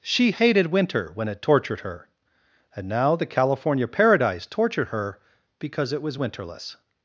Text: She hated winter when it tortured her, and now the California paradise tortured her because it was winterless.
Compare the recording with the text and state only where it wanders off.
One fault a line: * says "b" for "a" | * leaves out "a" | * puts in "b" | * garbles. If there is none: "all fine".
all fine